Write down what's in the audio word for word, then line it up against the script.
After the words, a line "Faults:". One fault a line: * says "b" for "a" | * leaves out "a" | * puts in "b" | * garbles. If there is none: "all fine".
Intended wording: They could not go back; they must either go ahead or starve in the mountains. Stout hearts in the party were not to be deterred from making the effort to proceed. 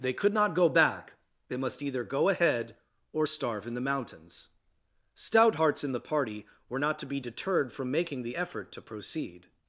They could not go back; they must either go ahead or starve in the mountains. Stout hearts in the party were not to be deterred from making the effort to proceed.
Faults:
all fine